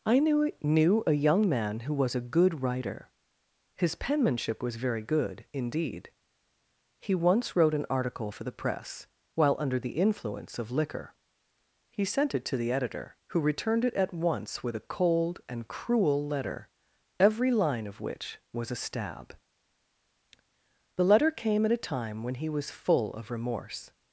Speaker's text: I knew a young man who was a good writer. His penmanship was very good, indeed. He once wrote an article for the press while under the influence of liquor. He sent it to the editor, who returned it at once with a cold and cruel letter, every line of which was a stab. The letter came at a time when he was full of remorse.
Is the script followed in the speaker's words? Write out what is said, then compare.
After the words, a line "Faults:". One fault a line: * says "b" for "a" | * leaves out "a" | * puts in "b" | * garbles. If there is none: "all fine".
I knew knew a young man who was a good writer. His penmanship was very good, indeed. He once wrote an article for the press while under the influence of liquor. He sent it to the editor, who returned it at once with a cold and cruel letter, every line of which was a stab. The letter came at a time when he was full of remorse.
Faults:
* puts in "knew"